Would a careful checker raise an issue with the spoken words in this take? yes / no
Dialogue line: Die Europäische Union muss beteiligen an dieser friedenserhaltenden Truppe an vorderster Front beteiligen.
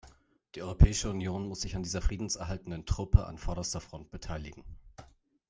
yes